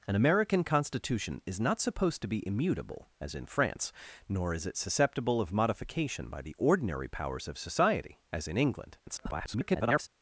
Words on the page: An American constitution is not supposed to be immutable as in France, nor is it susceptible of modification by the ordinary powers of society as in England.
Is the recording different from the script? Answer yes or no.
yes